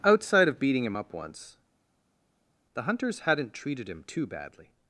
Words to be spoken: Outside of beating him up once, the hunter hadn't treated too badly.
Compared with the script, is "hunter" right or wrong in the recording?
wrong